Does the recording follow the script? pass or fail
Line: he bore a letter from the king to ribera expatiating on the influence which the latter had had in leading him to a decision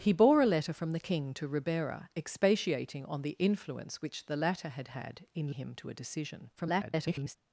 fail